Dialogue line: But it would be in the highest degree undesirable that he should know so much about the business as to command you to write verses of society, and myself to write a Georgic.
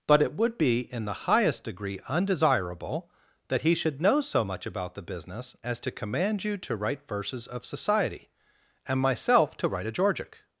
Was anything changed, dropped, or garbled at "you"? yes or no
no